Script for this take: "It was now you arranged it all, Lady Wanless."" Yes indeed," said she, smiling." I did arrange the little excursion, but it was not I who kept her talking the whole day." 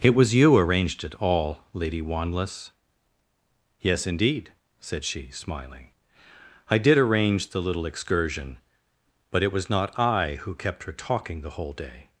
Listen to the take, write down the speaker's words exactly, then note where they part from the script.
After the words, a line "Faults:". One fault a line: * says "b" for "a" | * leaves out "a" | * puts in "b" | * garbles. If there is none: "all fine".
"It was you arranged it all, Lady Wanless."" Yes indeed," said she, smiling." I did arrange the little excursion, but it was not I who kept her talking the whole day."
Faults:
* leaves out "now"